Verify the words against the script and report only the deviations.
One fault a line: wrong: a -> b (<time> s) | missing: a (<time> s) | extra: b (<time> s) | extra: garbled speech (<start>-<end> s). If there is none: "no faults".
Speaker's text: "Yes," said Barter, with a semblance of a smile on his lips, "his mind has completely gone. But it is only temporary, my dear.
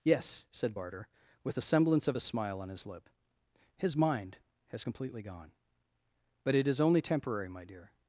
wrong: lips -> lip (2.9 s)